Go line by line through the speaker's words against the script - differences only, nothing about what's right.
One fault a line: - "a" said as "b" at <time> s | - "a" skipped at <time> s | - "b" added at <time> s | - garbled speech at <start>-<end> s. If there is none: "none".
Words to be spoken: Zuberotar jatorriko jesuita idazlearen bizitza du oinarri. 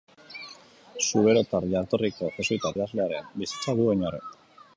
none